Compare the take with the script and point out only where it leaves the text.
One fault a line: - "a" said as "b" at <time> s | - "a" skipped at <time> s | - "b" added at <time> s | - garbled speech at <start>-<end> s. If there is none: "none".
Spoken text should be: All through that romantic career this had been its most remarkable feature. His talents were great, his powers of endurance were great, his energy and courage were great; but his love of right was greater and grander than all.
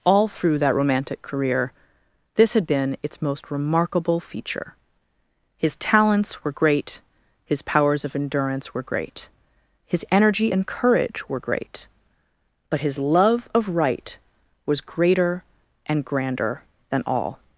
none